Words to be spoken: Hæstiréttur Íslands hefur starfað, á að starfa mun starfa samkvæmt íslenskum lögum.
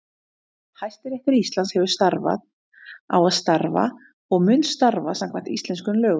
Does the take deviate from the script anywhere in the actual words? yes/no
yes